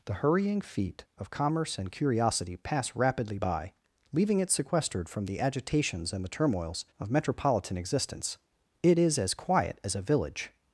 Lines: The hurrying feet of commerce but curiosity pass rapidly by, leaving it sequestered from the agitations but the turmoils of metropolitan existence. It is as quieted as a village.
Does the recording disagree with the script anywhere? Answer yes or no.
yes